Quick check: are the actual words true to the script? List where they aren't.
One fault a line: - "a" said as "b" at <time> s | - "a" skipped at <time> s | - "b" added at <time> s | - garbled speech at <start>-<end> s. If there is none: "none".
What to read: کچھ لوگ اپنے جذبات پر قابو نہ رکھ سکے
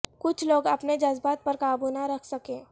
none